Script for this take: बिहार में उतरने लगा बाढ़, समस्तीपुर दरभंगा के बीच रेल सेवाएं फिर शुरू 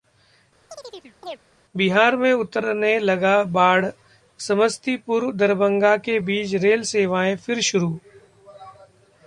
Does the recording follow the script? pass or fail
pass